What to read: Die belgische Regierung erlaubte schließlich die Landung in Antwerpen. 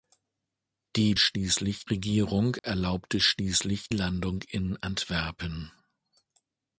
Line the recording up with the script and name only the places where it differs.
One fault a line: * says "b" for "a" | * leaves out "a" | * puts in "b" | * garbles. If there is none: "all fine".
* says "schließlich" for "belgische"
* leaves out "die"